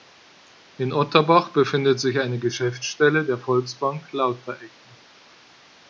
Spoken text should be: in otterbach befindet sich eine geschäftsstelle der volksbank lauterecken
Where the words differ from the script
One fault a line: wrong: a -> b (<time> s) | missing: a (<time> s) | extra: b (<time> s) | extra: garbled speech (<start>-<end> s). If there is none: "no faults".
no faults